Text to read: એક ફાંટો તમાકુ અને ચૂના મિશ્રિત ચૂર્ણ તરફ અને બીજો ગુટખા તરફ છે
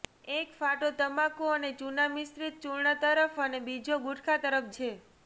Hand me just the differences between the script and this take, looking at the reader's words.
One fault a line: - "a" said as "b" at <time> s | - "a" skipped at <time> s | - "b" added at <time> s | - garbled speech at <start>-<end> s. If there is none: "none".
none